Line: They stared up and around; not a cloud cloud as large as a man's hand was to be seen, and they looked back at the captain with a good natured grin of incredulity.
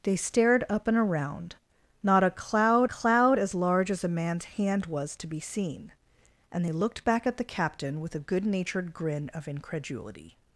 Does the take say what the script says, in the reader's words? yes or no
yes